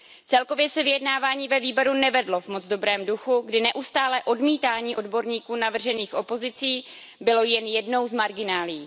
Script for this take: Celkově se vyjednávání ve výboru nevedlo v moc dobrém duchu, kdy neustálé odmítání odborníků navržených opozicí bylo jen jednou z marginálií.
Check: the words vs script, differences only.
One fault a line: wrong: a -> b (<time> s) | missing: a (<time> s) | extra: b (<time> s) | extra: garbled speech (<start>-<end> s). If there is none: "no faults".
no faults